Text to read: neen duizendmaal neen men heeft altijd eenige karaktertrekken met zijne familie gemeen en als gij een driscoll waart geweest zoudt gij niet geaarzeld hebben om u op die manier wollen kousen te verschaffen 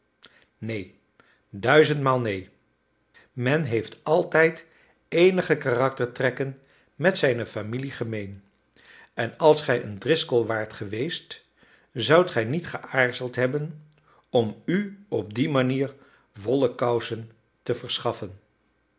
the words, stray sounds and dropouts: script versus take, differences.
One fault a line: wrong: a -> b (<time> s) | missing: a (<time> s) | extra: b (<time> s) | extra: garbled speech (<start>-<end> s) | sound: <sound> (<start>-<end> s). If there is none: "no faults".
no faults